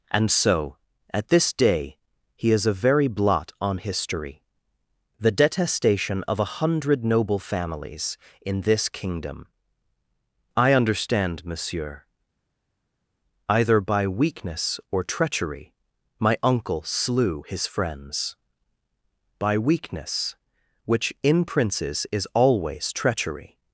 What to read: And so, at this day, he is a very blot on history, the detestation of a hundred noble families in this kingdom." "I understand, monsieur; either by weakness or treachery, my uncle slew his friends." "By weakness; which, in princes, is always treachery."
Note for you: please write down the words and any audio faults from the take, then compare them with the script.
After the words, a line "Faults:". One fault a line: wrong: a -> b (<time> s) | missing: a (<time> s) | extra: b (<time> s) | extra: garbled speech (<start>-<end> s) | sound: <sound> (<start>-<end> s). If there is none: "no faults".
And so, at this day, he is a very blot on history, the detestation of a hundred noble families in this kingdom." "I understand, monsieur; either by weakness or treachery, my uncle slew his friends." "By weakness; which, in princes, is always treachery."
Faults:
no faults